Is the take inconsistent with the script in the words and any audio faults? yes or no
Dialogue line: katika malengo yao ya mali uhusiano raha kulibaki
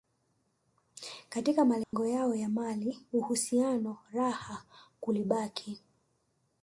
yes